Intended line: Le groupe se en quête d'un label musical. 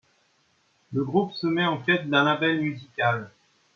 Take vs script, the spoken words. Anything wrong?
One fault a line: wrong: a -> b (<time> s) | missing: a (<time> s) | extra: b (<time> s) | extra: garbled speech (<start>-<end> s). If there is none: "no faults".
extra: met (1.5 s)